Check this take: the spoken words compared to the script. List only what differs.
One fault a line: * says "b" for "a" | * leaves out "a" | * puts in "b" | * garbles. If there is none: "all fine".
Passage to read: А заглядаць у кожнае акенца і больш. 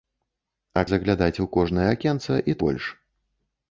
all fine